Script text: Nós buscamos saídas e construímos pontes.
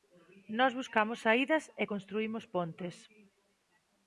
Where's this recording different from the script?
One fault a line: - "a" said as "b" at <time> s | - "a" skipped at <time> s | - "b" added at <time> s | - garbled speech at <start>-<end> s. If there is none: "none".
none